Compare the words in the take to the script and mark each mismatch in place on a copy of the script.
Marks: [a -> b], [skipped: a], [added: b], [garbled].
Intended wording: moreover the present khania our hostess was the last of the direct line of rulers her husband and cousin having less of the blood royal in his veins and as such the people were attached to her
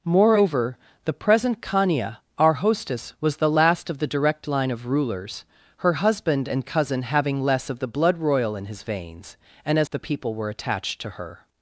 moreover the present khania our hostess was the last of the direct line of rulers her husband and cousin having less of the blood royal in his veins and as [skipped: such] the people were attached to her